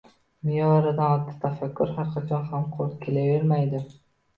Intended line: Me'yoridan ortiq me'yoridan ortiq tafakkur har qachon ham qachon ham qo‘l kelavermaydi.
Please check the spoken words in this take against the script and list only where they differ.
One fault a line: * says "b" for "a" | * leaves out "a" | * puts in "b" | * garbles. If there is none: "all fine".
* leaves out "me'yoridan ortiq"
* leaves out "qachon ham"